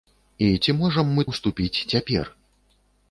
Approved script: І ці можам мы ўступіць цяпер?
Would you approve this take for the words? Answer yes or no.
yes